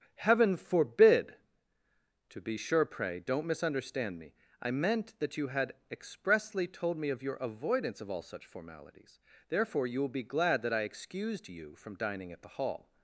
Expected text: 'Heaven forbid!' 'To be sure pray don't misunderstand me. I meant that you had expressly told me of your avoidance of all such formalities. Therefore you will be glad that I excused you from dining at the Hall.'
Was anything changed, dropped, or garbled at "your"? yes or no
no